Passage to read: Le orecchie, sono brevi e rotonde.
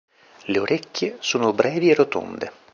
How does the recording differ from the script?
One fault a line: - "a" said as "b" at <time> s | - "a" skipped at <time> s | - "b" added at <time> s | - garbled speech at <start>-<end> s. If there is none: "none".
none